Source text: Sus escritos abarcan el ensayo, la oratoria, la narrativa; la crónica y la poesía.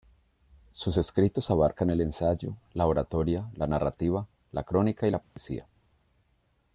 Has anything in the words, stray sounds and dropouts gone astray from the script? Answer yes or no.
yes